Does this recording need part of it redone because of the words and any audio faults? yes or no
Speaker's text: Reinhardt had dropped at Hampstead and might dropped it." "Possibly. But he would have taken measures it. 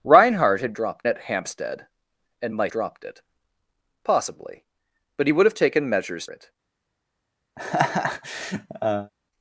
yes